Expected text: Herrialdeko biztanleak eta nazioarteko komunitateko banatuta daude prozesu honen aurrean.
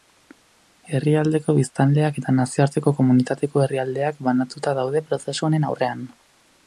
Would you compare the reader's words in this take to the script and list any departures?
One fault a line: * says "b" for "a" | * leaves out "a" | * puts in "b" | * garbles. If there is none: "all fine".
* puts in "herrialdeak"